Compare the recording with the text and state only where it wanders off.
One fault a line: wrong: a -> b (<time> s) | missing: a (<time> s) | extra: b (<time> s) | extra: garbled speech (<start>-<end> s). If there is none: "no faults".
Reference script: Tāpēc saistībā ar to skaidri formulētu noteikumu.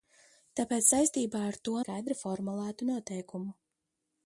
no faults